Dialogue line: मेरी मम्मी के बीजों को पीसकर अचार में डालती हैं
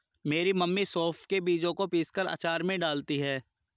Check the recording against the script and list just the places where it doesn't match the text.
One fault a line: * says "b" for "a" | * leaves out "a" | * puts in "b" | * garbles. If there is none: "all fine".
* puts in "सौंफ"